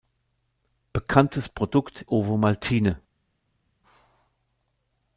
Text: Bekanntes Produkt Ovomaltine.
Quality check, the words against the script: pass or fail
pass